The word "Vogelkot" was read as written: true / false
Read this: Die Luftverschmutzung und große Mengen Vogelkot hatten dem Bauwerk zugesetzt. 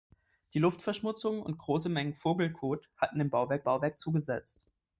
true